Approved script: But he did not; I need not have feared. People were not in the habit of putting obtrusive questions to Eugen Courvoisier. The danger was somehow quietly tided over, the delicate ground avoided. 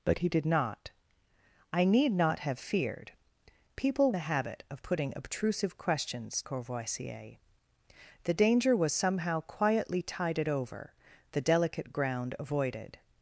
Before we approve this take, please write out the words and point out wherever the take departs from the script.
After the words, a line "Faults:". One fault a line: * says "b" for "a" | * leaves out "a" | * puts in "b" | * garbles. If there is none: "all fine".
But he did not; I need not have feared. People the habit of putting obtrusive questions Courvoisier. The danger was somehow quietly tided over, the delicate ground avoided.
Faults:
* leaves out "were not in"
* leaves out "to Eugen"